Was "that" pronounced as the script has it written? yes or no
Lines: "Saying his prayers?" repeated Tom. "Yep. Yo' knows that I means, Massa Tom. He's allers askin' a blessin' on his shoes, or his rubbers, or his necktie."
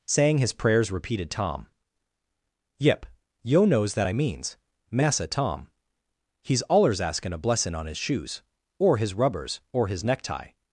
yes